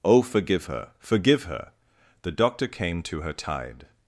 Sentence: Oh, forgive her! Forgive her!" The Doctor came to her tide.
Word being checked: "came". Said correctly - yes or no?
yes